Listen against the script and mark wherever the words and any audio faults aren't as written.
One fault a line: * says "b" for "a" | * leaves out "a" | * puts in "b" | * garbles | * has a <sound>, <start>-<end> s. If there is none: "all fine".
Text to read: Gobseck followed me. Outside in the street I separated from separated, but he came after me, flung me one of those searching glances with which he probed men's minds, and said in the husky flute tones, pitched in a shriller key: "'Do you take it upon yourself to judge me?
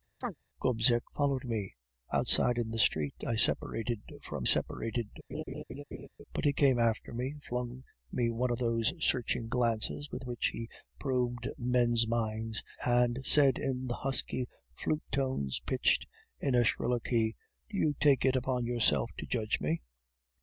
* has a chirp, 0.2-0.4 s
* has a laugh, 5.3-6.1 s